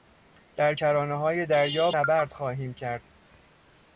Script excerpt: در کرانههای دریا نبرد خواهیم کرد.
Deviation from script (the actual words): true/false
false